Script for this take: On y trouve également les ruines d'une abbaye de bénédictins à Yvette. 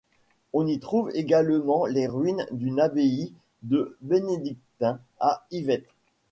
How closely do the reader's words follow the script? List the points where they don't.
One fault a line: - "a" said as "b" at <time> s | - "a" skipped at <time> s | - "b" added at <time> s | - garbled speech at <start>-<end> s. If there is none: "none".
none